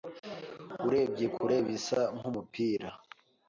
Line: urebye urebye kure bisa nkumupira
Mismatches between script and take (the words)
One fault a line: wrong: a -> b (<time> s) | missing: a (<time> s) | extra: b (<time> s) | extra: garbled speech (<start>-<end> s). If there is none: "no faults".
missing: urebye (1.2 s)